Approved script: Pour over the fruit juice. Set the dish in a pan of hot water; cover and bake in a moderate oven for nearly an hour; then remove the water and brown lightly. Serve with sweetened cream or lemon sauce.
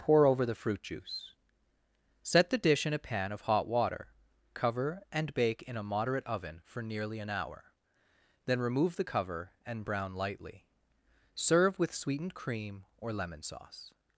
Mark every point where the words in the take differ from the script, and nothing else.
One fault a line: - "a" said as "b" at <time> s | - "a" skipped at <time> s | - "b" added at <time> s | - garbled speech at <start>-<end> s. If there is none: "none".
- "water" said as "cover" at 9.0 s